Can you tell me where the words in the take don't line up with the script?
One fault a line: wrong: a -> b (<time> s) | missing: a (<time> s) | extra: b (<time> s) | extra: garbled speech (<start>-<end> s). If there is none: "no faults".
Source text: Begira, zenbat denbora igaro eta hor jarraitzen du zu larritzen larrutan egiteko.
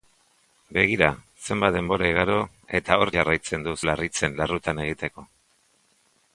missing: zu (3.7 s)